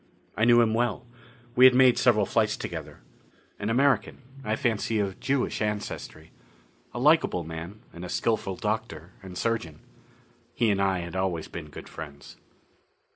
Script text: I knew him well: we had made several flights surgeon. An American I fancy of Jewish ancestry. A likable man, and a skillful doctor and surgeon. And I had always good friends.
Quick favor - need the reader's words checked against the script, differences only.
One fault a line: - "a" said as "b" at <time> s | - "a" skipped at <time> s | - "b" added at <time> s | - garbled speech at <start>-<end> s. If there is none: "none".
- "surgeon" said as "together" at 2.6 s
- "He" added at 10.6 s
- "been" added at 11.5 s